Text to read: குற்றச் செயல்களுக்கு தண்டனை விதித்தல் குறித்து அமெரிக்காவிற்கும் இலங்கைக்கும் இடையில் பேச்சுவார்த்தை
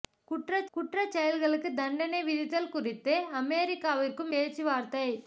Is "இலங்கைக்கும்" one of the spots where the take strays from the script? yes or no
yes